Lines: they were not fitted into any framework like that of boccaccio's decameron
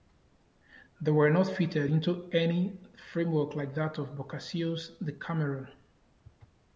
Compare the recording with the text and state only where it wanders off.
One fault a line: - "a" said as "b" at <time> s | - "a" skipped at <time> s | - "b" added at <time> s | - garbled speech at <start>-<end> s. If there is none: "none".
none